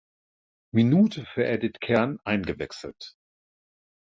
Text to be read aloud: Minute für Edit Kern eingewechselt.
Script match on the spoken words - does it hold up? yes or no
yes